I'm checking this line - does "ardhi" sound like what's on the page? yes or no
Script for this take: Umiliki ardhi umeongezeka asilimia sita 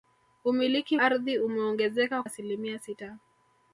yes